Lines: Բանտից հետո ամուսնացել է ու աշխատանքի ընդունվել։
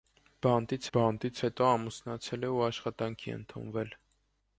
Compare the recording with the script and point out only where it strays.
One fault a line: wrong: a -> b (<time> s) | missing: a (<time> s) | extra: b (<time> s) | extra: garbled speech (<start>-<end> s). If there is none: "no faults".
extra: բանտից (1.0 s)